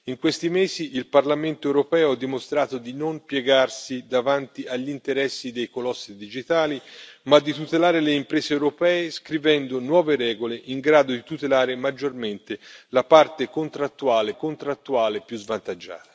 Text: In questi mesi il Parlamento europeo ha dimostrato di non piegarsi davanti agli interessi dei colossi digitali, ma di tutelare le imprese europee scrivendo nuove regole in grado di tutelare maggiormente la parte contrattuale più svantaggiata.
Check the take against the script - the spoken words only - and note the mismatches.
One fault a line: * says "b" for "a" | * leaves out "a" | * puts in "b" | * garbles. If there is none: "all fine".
* puts in "contrattuale"